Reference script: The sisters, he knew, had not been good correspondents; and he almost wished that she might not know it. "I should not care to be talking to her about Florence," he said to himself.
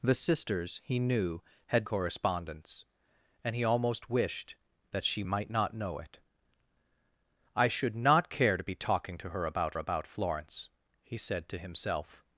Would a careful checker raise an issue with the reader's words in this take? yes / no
yes